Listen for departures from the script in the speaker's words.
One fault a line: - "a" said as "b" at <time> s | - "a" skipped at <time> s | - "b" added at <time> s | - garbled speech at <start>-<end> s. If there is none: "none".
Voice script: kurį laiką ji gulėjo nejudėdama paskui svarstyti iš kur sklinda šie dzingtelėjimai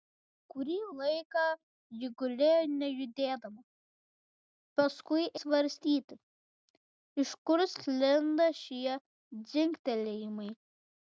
none